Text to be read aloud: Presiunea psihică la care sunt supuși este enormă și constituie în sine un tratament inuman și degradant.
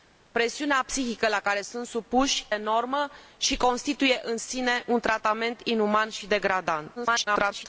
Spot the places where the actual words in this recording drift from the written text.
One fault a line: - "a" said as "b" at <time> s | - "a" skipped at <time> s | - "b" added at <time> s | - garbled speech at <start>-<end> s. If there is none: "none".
- "este" skipped at 2.5 s
- garbled speech at 7.0-7.7 s